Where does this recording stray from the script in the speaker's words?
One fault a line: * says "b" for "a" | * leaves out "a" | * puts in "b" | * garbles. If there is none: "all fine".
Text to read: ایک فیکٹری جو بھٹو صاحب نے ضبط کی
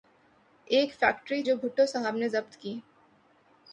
all fine